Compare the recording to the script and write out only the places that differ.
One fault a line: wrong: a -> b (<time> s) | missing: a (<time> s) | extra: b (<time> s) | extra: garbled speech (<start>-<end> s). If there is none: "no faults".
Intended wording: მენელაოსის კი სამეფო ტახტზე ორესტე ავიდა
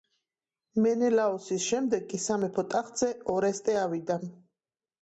extra: შემდეგ (1.7 s)